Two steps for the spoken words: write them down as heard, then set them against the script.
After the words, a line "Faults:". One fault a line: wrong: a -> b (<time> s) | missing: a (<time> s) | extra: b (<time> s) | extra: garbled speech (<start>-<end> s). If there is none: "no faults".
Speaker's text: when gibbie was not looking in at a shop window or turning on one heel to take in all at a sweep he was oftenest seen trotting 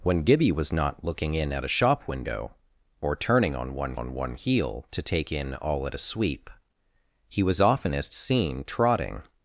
when gibbie was not looking in at a shop window or turning on one on one heel to take in all at a sweep he was oftenest seen trotting
Faults:
extra: on one (3.9 s)